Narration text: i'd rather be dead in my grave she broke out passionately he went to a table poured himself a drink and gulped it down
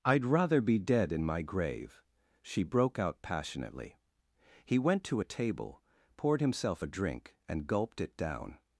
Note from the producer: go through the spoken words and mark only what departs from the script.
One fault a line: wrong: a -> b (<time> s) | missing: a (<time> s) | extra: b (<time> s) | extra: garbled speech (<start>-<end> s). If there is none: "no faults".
no faults